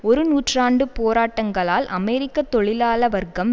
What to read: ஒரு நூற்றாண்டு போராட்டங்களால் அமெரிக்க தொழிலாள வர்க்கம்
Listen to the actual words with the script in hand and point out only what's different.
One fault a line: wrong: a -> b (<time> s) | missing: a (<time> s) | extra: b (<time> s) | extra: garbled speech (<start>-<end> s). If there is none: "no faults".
no faults